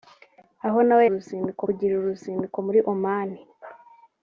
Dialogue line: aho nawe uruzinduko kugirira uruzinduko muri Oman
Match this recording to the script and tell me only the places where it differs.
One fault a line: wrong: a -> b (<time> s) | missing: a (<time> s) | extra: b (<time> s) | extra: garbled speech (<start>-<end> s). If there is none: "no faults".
no faults